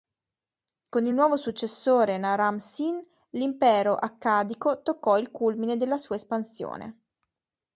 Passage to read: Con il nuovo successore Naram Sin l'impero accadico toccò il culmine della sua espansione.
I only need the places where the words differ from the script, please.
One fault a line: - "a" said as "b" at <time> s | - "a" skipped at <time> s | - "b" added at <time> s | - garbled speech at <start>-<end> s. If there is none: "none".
none